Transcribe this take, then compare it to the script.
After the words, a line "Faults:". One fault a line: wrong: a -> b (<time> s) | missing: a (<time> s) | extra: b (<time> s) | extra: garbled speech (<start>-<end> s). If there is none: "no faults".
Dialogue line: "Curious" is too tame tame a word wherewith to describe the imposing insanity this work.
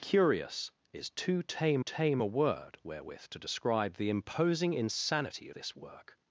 "Curious" is too tame tame a word wherewith to describe the imposing insanity this work.
Faults:
no faults